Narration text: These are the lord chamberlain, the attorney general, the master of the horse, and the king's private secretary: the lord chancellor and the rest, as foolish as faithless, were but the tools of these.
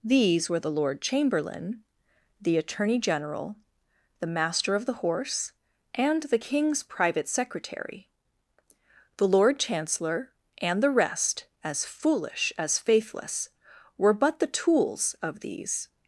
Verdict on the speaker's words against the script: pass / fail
fail